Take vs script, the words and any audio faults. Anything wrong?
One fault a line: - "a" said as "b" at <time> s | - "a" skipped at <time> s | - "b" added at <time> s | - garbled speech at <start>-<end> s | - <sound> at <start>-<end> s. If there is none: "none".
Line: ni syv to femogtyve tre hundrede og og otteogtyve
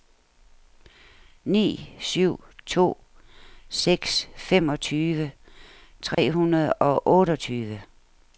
- "seks" added at 3.7 s
- dropout at 6.1-6.2 s
- "og" skipped at 7.1 s